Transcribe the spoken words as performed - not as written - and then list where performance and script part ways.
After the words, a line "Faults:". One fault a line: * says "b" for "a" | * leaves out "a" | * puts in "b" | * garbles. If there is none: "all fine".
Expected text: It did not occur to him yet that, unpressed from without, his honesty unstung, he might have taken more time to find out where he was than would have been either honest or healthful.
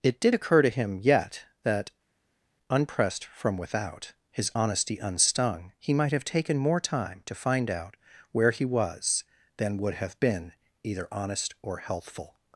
It did occur to him yet that, unpressed from without, his honesty unstung, he might have taken more time to find out where he was than would have been either honest or healthful.
Faults:
* leaves out "not"